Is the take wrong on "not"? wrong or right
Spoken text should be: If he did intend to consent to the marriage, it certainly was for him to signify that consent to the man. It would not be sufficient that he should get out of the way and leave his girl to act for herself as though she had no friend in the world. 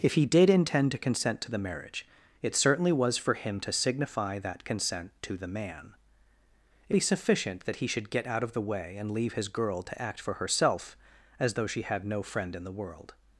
wrong